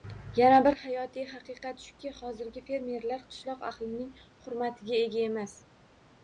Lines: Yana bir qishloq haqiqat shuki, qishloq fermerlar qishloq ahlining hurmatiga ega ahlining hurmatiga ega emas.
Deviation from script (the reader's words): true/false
true